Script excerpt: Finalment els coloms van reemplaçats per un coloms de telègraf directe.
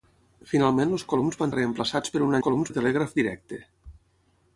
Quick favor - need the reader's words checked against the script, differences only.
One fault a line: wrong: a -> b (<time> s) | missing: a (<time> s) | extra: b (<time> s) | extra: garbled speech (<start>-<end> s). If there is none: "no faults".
no faults